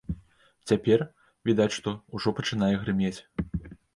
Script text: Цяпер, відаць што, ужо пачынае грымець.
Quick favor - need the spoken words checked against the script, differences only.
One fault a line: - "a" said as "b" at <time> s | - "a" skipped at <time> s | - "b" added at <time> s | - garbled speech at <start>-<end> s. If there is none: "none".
none